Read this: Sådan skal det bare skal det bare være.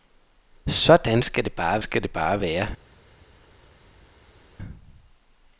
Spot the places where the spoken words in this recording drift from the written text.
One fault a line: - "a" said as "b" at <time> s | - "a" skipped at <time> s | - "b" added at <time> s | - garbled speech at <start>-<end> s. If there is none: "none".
none